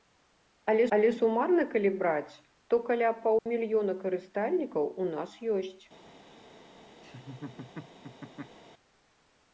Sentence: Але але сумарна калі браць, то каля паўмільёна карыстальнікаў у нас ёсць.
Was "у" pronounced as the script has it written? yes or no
yes